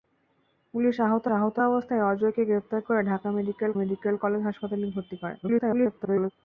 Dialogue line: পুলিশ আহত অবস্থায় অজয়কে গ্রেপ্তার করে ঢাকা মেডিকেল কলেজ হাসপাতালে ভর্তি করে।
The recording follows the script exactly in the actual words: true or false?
false